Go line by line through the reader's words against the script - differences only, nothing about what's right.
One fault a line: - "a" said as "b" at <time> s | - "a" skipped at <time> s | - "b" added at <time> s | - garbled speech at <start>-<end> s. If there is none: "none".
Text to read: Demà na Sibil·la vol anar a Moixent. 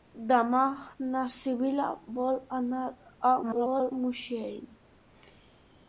- garbled speech at 3.4-3.9 s